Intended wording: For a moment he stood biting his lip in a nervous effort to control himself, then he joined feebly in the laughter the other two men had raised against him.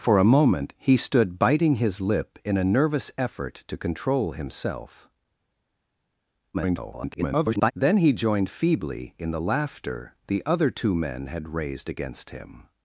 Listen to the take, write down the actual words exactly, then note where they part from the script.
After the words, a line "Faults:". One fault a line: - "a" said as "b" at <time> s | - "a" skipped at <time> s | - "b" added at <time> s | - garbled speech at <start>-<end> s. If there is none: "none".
For a moment he stood biting his lip in a nervous effort to control himself, [garbled] then he joined feebly in the laughter the other two men had raised against him.
Faults:
- garbled speech at 6.5-7.7 s